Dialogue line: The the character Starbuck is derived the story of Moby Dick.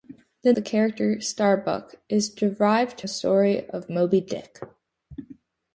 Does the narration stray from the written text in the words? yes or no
no